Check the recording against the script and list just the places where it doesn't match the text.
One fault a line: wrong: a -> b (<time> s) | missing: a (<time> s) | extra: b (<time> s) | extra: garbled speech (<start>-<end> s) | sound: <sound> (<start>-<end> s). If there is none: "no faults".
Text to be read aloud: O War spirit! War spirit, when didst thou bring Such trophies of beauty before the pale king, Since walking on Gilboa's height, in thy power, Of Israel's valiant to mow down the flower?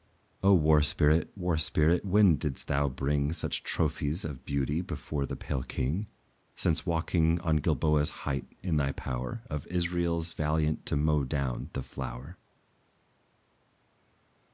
no faults